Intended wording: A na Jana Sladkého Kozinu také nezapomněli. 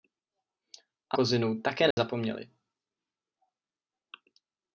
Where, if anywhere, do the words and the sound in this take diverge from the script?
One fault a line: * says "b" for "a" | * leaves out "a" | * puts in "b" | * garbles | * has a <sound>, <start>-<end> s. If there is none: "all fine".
* leaves out "na Jana Sladkého"
* has a dropout, 1.9-2.0 s